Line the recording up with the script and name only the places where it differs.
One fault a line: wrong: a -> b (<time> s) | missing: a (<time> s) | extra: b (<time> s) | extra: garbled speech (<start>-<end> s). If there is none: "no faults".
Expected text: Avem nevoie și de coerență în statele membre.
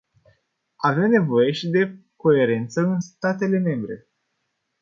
no faults